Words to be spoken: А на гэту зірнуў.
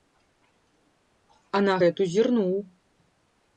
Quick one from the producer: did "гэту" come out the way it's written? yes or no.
yes